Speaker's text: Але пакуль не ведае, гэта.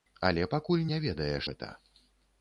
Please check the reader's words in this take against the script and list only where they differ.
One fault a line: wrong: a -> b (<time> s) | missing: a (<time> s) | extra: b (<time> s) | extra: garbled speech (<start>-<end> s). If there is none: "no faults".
no faults